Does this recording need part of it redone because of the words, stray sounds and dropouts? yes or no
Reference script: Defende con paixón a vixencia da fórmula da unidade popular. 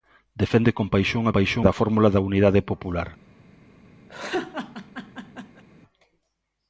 yes